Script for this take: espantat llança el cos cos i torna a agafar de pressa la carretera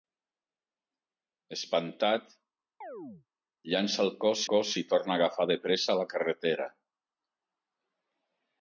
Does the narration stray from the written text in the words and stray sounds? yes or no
yes